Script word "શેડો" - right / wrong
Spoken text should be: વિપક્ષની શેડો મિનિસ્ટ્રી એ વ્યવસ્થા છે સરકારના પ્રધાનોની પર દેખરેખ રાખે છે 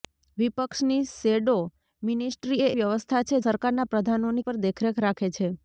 right